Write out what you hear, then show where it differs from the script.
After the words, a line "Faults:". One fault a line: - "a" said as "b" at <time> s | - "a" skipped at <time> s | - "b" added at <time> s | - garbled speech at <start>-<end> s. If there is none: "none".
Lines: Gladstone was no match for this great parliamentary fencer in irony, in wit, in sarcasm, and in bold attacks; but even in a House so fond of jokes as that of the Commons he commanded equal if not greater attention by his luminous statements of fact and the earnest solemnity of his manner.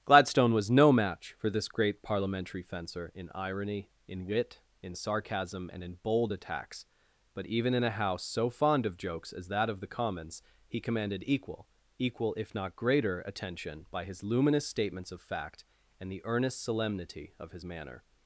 Gladstone was no match for this great parliamentary fencer in irony, in wit, in sarcasm, and in bold attacks; but even in a House so fond of jokes as that of the Commons he commanded equal equal if not greater attention by his luminous statements of fact and the earnest solemnity of his manner.
Faults:
- "equal" added at 12.0 s